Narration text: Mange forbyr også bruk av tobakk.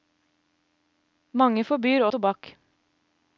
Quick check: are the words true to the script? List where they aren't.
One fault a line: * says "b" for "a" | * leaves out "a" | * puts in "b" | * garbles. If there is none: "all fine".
* leaves out "også bruk"